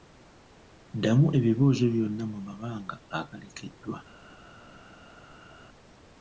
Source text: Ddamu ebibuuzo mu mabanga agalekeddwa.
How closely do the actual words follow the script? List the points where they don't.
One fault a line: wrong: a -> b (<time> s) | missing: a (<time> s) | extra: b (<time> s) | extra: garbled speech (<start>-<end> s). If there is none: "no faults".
extra: byonna (1.9 s)